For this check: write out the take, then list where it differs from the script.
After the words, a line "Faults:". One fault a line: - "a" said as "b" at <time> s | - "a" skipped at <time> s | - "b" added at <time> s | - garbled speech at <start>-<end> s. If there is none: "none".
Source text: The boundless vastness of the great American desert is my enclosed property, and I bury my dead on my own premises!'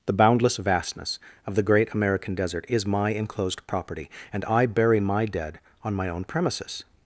The boundless vastness of the great American desert is my enclosed property, and I bury my dead on my own premises!'
Faults:
none